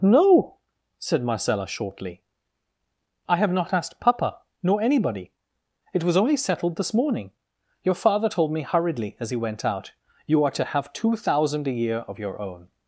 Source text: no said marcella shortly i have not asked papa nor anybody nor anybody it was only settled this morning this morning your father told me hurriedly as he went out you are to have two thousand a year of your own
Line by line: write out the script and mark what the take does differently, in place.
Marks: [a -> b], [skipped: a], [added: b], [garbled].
no said marcella shortly i have not asked papa nor anybody [skipped: nor anybody] it was only settled this morning [skipped: this morning] your father told me hurriedly as he went out you are to have two thousand a year of your own